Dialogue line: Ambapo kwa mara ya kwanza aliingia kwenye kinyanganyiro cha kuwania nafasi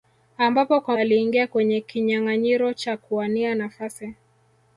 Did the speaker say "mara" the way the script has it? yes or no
no